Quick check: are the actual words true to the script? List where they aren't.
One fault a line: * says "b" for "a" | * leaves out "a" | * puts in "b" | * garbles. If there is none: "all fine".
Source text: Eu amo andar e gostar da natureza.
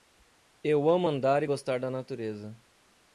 all fine